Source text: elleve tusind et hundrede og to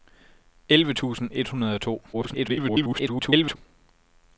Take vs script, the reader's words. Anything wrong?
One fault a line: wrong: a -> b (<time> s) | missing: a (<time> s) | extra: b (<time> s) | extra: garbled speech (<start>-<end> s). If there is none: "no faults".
extra: garbled speech (2.1-3.6 s)